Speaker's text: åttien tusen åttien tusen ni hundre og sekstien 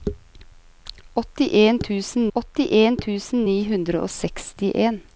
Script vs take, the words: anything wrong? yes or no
no